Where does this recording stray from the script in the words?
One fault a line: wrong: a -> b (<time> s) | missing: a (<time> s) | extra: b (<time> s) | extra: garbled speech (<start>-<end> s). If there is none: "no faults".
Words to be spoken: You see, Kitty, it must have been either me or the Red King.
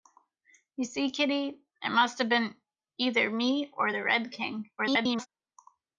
extra: garbled speech (4.8-5.3 s)